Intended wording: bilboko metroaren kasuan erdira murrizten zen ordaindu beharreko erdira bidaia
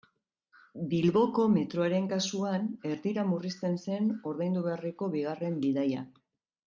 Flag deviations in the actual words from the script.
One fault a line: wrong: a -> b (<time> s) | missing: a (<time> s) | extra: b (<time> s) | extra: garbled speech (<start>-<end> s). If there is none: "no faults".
wrong: erdira -> bigarren (5.2 s)